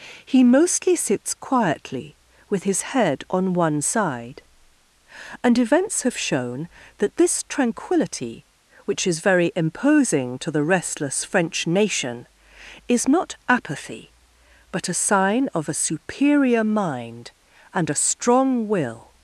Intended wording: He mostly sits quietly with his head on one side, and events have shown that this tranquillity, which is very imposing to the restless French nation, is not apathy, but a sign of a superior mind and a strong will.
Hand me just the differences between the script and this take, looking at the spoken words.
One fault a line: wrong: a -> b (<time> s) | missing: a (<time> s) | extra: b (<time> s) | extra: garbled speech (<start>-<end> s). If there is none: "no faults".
no faults